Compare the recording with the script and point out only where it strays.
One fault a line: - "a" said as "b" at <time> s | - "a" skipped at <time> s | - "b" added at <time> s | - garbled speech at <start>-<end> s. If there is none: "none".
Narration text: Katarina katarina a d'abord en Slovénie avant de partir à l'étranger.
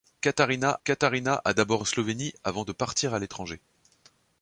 none